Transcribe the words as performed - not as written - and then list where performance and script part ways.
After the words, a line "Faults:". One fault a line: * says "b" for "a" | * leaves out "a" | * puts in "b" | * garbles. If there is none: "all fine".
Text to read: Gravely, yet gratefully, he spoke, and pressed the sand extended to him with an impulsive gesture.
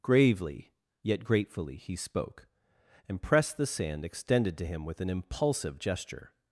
Gravely, yet gratefully, he spoke, and pressed the sand extended to him with an impulsive gesture.
Faults:
all fine